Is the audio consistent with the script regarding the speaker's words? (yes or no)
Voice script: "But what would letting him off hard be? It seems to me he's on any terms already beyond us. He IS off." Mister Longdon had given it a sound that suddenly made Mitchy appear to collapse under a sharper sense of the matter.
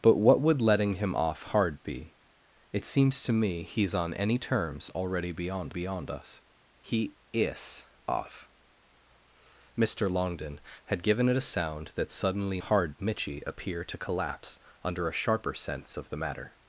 no